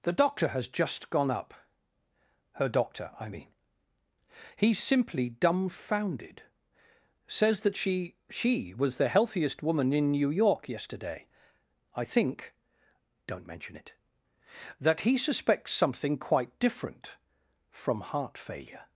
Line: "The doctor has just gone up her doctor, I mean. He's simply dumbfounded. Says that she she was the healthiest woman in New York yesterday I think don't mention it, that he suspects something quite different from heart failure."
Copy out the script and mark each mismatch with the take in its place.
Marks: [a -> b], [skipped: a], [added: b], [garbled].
"The doctor has just gone up her doctor, I mean. He's simply dumbfounded. Says that she she was the healthiest woman in New York yesterday I think don't mention it, that he suspects something quite different from heart failure."